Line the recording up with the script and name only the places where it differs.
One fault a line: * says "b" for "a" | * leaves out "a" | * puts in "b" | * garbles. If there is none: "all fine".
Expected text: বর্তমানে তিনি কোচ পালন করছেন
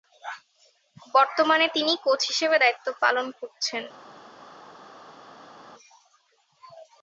* puts in "হিসেবে দায়িত্ব"